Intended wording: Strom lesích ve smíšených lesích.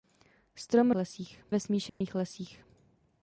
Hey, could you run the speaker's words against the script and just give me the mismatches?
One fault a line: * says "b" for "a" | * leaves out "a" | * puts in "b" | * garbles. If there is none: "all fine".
all fine